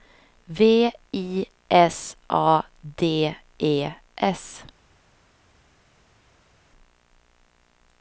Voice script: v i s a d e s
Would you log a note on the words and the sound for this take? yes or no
no